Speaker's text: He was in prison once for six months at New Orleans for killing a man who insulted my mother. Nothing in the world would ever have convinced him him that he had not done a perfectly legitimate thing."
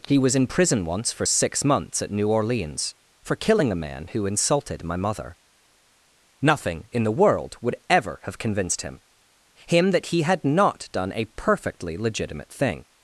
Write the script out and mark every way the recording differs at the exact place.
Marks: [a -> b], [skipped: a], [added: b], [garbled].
He was in prison once for six months at New Orleans for killing a man who insulted my mother. Nothing in the world would ever have convinced him him that he had not done a perfectly legitimate thing."